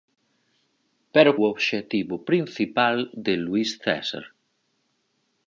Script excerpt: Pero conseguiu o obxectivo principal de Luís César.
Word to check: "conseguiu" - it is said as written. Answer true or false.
false